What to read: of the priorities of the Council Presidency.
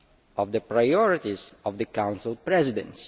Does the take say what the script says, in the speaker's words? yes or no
yes